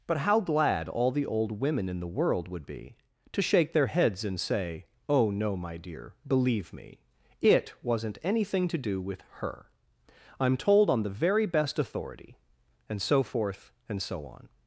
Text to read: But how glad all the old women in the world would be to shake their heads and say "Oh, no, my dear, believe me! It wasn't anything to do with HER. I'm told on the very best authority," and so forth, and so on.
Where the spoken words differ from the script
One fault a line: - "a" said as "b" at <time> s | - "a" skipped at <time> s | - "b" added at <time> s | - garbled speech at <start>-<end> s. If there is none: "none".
none